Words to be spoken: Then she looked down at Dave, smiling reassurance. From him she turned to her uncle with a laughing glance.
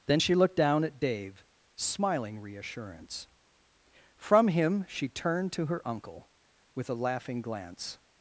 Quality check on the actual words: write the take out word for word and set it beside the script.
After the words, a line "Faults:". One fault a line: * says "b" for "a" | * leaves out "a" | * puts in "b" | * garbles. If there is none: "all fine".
Then she looked down at Dave, smiling reassurance. From him she turned to her uncle with a laughing glance.
Faults:
all fine